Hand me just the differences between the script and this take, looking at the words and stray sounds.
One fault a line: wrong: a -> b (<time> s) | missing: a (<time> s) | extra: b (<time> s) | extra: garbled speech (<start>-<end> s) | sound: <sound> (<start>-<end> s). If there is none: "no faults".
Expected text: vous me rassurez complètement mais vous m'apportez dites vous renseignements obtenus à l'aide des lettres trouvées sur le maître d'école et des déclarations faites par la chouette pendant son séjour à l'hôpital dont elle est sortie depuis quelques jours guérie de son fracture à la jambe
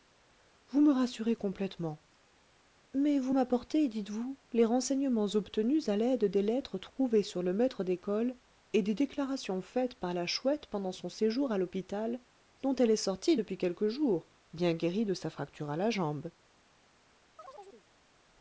extra: les (4.5 s)
extra: bien (14.5 s)
wrong: son -> sa (15.1 s)
sound: chirp (17.4-17.9 s)